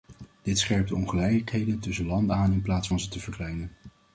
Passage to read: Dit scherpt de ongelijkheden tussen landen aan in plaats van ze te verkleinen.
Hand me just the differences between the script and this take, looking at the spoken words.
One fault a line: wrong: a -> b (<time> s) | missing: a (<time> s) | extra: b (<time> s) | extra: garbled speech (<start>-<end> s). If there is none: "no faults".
no faults